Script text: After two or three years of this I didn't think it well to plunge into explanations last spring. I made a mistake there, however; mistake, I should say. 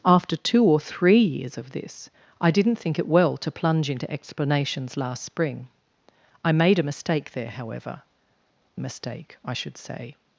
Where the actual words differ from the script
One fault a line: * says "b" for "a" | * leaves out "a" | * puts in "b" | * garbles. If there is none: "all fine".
all fine